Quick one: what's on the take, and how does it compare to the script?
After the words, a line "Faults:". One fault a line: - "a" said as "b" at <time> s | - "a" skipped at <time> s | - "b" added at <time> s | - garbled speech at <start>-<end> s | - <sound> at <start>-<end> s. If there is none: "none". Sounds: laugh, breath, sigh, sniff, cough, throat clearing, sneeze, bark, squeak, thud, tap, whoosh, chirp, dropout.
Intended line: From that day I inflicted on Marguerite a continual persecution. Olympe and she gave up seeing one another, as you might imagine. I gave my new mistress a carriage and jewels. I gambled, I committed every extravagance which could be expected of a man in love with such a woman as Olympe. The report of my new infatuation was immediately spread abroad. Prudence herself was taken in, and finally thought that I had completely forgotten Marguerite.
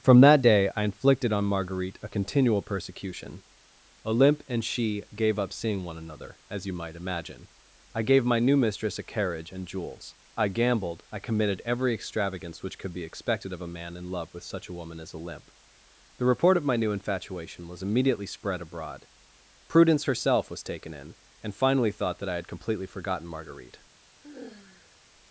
From that day I inflicted on Marguerite a continual persecution. Olympe and she gave up seeing one another, as you might imagine. I gave my new mistress a carriage and jewels. I gambled, I committed every extravagance which could be expected of a man in love with such a woman as Olympe. The report of my new infatuation was immediately spread abroad. Prudence herself was taken in, and finally thought that I had completely forgotten Marguerite.
Faults:
- sigh at 24.2-25.0 s